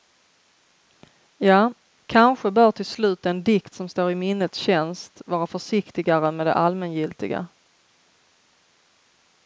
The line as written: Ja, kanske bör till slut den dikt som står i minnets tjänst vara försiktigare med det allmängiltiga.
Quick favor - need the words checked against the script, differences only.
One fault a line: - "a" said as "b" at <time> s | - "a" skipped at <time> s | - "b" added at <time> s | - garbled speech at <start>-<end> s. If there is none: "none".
none